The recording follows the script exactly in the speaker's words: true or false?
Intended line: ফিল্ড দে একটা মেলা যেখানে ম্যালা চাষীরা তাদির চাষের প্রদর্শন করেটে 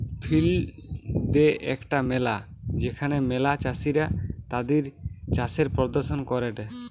true